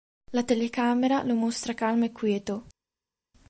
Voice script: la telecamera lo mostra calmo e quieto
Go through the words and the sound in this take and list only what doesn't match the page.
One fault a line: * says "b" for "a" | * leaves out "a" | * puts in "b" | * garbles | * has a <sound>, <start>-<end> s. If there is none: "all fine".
all fine